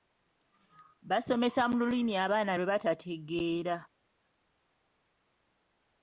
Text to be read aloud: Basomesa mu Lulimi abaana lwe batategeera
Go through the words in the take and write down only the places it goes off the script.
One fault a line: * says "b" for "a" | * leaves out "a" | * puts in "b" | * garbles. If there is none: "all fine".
all fine